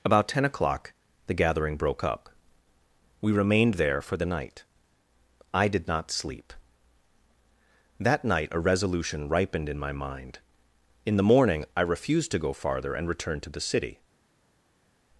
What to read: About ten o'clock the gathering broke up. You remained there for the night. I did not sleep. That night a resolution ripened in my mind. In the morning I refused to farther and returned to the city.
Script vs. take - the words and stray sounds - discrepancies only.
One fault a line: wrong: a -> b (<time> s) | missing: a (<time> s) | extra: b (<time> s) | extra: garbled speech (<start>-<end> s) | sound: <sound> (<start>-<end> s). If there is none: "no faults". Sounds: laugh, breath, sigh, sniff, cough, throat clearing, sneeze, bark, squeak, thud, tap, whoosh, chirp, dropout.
wrong: You -> We (3.2 s)
extra: go (12.4 s)